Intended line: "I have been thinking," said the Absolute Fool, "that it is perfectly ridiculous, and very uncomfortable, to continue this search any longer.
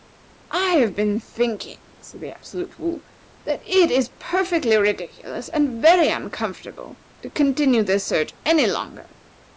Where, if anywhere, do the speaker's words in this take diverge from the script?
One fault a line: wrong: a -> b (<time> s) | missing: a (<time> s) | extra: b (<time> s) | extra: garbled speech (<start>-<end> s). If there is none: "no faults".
no faults